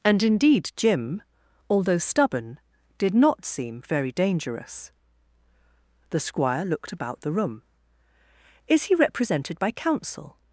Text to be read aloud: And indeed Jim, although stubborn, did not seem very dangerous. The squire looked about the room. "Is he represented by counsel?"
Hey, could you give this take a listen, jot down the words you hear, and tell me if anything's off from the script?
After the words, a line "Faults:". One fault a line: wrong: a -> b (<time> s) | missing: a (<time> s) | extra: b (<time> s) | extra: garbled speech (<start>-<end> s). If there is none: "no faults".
And indeed Jim, although stubborn, did not seem very dangerous. The squire looked about the room. "Is he represented by counsel?"
Faults:
no faults